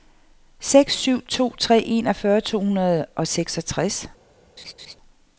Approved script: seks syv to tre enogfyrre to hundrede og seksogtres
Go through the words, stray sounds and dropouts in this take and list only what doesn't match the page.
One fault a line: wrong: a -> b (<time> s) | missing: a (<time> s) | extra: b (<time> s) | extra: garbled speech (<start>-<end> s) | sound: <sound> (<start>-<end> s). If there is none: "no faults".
sound: laugh (4.6-5.0 s)